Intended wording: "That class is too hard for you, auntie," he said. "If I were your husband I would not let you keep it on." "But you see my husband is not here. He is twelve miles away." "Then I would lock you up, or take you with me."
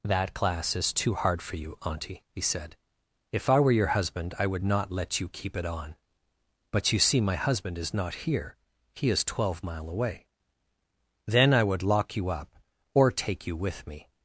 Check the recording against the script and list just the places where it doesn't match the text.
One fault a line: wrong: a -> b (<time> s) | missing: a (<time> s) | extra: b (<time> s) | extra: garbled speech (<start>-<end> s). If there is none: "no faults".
wrong: miles -> mile (9.6 s)